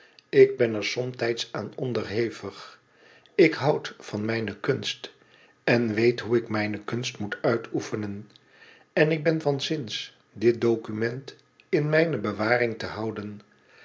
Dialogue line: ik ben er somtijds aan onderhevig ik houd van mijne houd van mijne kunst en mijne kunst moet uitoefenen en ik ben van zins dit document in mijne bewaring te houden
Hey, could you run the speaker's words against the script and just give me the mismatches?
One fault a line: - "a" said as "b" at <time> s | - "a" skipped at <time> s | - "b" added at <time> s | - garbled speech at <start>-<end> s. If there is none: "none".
- "houd van mijne kunst en" said as "kunst en weet hoe ik" at 4.6 s